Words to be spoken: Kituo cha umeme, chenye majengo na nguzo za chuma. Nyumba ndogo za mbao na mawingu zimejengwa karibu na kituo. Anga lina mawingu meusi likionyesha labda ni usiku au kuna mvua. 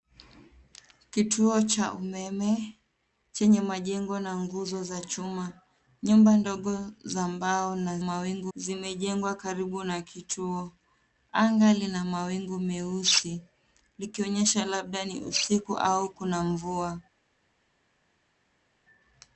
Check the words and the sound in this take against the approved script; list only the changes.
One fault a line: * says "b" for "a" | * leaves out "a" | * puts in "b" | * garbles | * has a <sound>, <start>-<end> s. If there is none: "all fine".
all fine